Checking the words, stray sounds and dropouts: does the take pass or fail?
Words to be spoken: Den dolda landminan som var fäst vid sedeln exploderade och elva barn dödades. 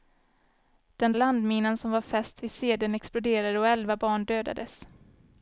fail